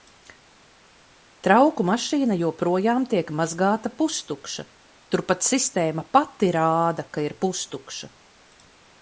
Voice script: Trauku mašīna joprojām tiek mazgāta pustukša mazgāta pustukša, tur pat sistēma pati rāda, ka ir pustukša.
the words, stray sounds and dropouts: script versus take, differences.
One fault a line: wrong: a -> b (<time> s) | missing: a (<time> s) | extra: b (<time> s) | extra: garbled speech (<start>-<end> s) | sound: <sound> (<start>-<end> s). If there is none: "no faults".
missing: mazgāta pustukša (4.6 s)